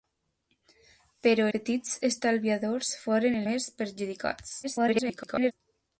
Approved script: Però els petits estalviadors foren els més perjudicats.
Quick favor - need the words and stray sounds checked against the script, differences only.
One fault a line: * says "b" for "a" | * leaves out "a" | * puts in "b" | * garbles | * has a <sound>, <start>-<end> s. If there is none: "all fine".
* leaves out "els"
* leaves out "els"
* garbles